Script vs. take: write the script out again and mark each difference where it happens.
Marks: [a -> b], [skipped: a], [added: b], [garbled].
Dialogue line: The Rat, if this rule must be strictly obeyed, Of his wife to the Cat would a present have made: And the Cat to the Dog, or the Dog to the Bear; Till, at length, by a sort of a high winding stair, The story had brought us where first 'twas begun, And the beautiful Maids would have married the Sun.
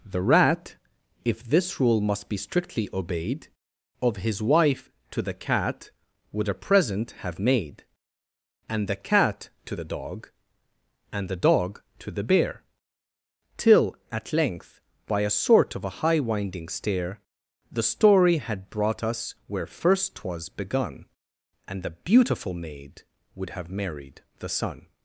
The Rat, if this rule must be strictly obeyed, Of his wife to the Cat would a present have made: And the Cat to the Dog, [or -> and] the Dog to the Bear; Till, at length, by a sort of a high winding stair, The story had brought us where first 'twas begun, And the beautiful [Maids -> Maid] would have married the Sun.